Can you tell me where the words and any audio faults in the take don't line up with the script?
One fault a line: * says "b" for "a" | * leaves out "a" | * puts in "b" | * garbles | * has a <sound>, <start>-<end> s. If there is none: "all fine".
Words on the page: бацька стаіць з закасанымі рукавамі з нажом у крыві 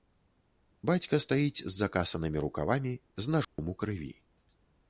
* has a dropout, 3.4-3.6 s